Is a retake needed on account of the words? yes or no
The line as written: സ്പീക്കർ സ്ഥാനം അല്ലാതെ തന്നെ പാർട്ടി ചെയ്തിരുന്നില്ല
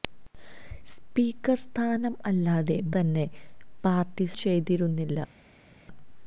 no